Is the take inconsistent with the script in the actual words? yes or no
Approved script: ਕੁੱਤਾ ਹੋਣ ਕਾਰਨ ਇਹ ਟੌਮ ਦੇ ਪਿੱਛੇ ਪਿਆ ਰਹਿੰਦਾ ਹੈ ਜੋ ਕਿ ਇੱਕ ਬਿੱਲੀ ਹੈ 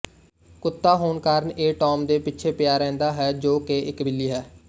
no